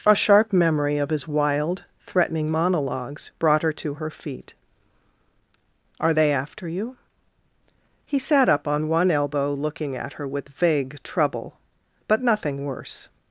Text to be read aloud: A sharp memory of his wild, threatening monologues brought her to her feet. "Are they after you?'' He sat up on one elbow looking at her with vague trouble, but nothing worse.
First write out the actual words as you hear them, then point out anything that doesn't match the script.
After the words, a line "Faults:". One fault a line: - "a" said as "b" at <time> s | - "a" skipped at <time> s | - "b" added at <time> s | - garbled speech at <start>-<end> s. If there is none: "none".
A sharp memory of his wild, threatening monologues brought her to her feet. "Are they after you?'' He sat up on one elbow looking at her with vague trouble, but nothing worse.
Faults:
none